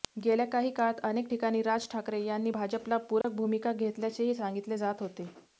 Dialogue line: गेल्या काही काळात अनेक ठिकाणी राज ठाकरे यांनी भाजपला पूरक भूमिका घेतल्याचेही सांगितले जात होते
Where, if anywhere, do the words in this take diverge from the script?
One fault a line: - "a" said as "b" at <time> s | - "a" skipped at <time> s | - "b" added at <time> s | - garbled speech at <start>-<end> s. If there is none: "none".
none